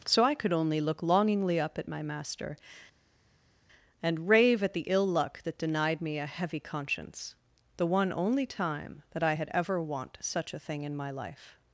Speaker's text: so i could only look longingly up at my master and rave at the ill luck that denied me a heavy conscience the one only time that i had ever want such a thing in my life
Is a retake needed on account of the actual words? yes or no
no